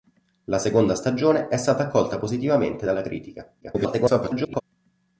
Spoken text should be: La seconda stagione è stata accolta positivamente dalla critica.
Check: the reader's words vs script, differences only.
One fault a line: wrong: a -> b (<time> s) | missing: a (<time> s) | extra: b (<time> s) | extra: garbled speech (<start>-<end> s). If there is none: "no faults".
extra: garbled speech (3.6-4.6 s)